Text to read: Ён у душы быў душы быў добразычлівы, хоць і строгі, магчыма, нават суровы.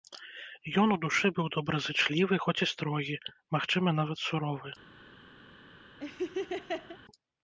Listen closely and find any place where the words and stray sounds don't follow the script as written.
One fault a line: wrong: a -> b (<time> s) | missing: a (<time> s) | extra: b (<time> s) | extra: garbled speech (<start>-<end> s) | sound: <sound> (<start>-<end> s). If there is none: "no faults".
missing: душы быў (1.5 s)
sound: laugh (6.0-7.0 s)